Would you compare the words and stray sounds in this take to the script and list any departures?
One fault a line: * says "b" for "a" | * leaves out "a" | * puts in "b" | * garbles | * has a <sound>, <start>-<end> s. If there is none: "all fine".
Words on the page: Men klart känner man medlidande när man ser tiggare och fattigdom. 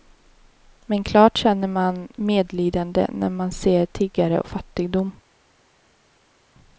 all fine